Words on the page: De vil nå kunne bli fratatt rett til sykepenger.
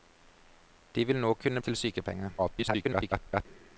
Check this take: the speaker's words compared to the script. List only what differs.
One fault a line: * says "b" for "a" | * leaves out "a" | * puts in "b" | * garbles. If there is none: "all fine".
* leaves out "bli fratatt rett"
* garbles